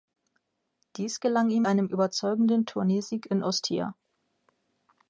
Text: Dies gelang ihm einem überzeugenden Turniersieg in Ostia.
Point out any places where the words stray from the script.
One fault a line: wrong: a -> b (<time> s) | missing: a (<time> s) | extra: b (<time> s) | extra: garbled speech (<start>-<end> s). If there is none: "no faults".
no faults